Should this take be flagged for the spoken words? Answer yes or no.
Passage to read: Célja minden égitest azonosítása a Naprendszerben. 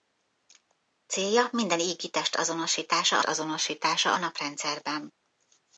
yes